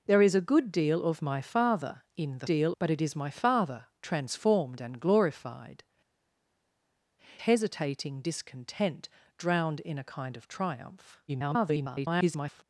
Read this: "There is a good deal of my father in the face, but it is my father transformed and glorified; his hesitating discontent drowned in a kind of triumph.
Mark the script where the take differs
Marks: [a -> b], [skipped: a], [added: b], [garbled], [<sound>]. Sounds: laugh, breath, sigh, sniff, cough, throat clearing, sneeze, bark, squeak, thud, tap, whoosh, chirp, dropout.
"There is a good deal of my father in the [face, -> deal] but it is my father transformed and glorified; [skipped: his] hesitating discontent drowned in a kind of triumph. [garbled]